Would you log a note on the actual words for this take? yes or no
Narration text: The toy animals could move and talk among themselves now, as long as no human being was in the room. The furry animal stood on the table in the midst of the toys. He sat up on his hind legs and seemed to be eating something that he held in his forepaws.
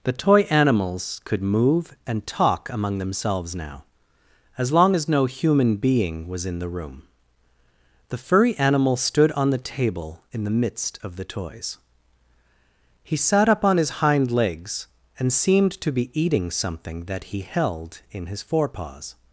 no